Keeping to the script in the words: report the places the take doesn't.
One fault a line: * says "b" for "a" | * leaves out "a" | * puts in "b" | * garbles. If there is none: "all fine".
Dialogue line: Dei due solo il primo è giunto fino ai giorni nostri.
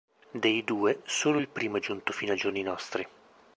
all fine